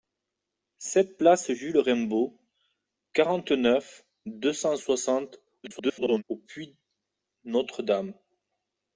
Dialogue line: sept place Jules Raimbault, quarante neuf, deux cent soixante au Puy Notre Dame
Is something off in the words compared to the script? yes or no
yes